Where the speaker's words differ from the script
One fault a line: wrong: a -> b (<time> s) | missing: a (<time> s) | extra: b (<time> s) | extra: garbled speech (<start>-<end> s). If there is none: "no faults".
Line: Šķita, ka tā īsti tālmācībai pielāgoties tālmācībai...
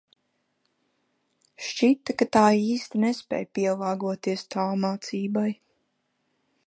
wrong: tālmācībai -> nespēj (3.1 s)